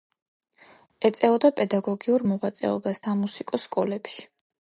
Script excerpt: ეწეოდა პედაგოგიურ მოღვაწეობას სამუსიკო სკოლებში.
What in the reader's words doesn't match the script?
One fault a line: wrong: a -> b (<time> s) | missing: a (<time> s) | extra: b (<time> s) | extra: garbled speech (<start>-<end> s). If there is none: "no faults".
no faults